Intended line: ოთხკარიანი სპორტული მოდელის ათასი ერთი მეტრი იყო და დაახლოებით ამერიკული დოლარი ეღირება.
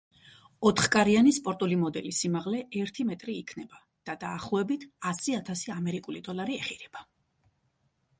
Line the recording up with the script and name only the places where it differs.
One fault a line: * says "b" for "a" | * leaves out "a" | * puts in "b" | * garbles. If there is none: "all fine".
* says "სიმაღლე" for "ათასი"
* says "იქნება" for "იყო"
* puts in "ასი ათასი"